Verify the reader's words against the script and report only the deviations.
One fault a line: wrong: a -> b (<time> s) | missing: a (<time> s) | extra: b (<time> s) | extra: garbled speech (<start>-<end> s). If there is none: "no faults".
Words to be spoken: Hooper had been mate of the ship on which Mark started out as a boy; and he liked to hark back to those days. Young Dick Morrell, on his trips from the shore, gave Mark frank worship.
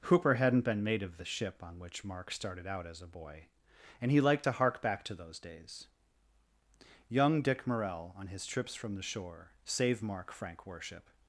wrong: had -> hadn't (0.3 s)
wrong: gave -> save (9.7 s)